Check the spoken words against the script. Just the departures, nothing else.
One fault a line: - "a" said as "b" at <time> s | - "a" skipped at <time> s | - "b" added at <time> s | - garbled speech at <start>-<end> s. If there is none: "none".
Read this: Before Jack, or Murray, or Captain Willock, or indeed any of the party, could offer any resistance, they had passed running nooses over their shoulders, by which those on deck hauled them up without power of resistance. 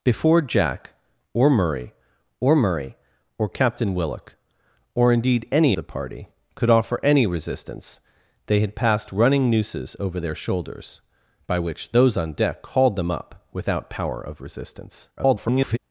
- "Murray or" added at 2.6 s
- "of" skipped at 5.7 s
- garbled speech at 15.2-15.8 s